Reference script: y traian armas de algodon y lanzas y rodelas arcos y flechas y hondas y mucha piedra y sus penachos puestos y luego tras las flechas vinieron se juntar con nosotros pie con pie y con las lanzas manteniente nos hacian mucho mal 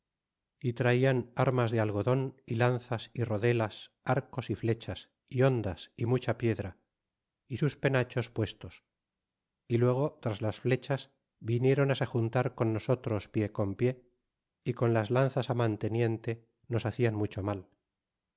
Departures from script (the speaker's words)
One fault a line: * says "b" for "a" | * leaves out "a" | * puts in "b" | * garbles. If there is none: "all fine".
all fine